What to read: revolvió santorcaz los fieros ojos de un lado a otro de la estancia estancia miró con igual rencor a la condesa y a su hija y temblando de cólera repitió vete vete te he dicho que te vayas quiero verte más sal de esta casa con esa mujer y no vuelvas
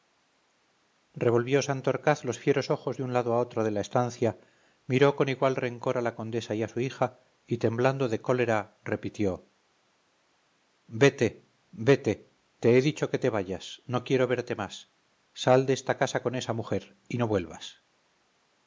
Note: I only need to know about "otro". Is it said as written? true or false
true